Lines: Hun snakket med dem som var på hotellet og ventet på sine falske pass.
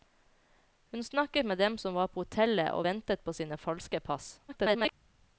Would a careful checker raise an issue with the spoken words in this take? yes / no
yes